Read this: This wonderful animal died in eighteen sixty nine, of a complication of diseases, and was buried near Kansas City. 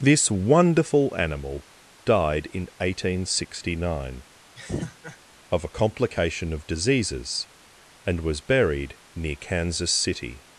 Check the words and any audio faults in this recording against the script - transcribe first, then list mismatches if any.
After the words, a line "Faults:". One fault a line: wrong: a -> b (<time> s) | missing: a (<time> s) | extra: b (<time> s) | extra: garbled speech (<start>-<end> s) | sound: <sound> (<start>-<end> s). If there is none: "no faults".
This wonderful animal died in eighteen sixty nine, of a complication of diseases, and was buried near Kansas City.
Faults:
sound: laugh (4.6-5.2 s)